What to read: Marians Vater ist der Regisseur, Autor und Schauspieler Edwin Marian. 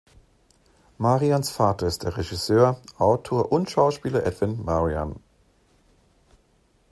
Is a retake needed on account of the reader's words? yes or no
no